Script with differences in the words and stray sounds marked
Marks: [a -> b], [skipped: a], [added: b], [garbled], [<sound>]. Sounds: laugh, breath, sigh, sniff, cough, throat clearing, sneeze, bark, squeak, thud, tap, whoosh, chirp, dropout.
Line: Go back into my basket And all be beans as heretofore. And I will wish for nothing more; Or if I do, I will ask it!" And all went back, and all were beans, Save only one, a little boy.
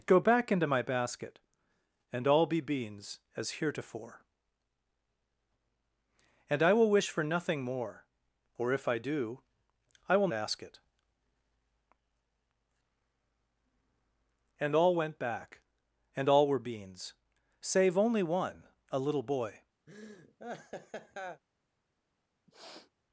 Go back into my basket And all be beans as heretofore. And I will wish for nothing more; Or if I do, I will ask it!" And all went back, and all were beans, Save only one, a little boy. [laugh] [sniff]